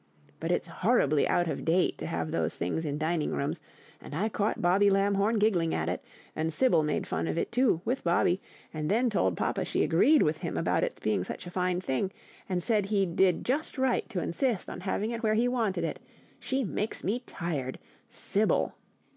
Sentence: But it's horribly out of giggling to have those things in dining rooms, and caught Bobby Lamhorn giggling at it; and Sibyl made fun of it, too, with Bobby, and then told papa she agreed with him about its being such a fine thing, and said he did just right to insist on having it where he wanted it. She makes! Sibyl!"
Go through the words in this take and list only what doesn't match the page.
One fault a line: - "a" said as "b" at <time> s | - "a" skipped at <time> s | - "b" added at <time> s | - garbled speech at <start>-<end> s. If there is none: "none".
- "giggling" said as "date" at 1.6 s
- "I" added at 4.2 s
- "me tired" added at 17.0 s